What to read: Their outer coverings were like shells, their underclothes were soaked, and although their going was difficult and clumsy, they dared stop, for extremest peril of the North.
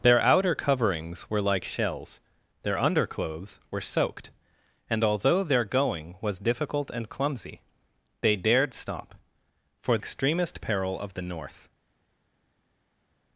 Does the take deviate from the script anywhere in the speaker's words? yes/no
no